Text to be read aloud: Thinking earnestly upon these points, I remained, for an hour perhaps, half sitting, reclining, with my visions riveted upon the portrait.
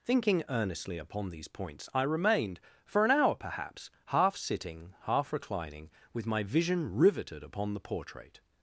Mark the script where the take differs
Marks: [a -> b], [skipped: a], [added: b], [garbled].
Thinking earnestly upon these points, I remained, for an hour perhaps, half sitting, [added: half] reclining, with my [visions -> vision] riveted upon the portrait.